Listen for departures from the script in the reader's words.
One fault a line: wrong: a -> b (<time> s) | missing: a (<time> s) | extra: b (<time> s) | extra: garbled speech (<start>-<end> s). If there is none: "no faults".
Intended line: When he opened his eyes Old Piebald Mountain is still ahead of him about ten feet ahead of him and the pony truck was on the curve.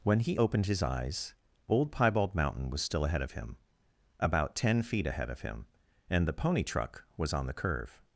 wrong: is -> was (2.7 s)